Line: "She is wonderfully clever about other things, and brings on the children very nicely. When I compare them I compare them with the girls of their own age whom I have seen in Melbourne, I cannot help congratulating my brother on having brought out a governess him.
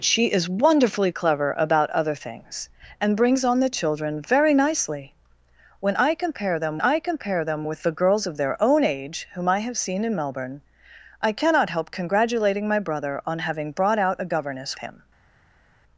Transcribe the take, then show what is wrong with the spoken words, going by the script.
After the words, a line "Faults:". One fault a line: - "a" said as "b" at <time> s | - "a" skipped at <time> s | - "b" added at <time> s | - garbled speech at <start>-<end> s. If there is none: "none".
"She is wonderfully clever about other things, and brings on the children very nicely. When I compare them I compare them with the girls of their own age whom I have seen in Melbourne, I cannot help congratulating my brother on having brought out a governess him.
Faults:
none